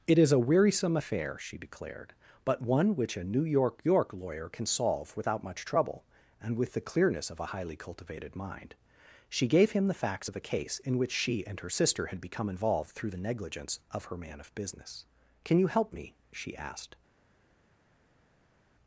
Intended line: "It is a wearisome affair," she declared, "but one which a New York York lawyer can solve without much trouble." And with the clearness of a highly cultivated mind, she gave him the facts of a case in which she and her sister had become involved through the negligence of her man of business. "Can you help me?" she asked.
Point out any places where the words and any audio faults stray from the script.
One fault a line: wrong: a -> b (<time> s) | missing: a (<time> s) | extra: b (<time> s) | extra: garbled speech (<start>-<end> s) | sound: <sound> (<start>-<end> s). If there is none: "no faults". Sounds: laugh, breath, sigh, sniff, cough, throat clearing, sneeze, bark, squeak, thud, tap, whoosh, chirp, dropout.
no faults